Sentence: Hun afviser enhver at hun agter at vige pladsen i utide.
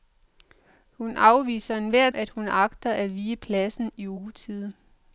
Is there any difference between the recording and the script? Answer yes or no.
no